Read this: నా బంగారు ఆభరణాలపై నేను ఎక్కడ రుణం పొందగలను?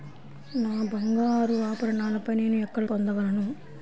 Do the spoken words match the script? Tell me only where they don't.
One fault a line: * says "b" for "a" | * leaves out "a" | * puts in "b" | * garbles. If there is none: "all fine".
* leaves out "రుణం"